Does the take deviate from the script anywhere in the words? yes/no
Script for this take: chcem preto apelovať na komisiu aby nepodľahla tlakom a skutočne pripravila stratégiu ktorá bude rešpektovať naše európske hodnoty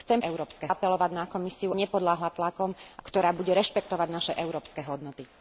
yes